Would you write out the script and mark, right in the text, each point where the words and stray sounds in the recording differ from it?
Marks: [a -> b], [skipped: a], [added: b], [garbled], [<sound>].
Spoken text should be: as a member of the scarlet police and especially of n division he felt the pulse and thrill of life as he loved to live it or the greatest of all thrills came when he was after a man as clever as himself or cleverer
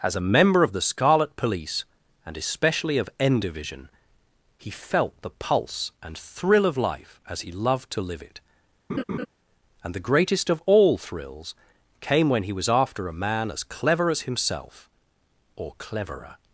as a member of the scarlet police and especially of n division he felt the pulse and thrill of life as he loved to live it [laugh] [or -> and] the greatest of all thrills came when he was after a man as clever as himself or cleverer